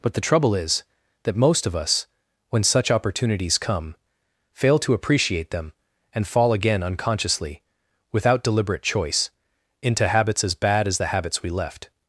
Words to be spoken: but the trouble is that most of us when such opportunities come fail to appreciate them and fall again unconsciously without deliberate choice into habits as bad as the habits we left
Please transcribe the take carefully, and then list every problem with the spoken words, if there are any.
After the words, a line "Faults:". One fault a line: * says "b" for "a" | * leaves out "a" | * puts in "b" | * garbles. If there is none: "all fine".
but the trouble is that most of us when such opportunities come fail to appreciate them and fall again unconsciously without deliberate choice into habits as bad as the habits we left
Faults:
all fine